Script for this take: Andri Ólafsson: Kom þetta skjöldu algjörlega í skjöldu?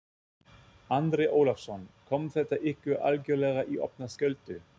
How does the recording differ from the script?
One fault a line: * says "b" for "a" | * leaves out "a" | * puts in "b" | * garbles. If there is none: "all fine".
* says "ykkur" for "skjöldu"
* puts in "opna"